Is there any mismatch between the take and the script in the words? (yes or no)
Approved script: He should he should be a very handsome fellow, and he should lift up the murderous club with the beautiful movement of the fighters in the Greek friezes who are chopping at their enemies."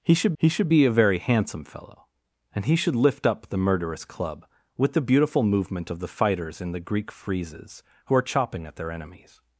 no